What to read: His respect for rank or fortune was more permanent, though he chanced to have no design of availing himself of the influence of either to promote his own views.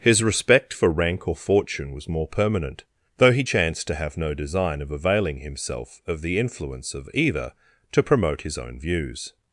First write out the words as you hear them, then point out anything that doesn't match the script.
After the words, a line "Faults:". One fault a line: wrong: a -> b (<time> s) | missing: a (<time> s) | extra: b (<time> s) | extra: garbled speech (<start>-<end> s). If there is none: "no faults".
His respect for rank or fortune was more permanent, though he chanced to have no design of availing himself of the influence of either to promote his own views.
Faults:
no faults